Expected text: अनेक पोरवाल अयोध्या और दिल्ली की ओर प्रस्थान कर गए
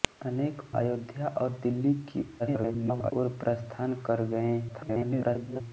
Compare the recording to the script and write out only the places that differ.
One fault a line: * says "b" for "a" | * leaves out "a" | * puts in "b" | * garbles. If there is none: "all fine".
* leaves out "पोरवाल"
* garbles
* garbles